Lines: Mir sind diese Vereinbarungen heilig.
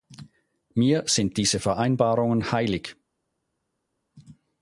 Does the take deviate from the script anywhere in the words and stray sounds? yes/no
no